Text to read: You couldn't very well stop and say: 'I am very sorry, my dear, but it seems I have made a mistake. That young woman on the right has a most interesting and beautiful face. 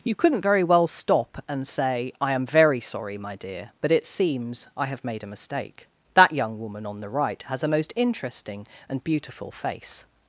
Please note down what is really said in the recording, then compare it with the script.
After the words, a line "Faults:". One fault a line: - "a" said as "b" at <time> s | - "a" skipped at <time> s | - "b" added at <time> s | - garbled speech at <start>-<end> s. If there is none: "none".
You couldn't very well stop and say: 'I am very sorry, my dear, but it seems I have made a mistake. That young woman on the right has a most interesting and beautiful face.
Faults:
none